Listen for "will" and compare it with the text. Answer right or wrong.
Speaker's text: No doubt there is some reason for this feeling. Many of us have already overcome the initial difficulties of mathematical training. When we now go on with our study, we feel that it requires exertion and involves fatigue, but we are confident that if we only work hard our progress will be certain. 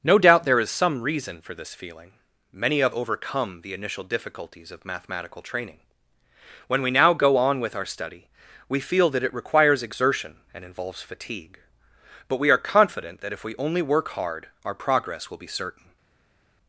right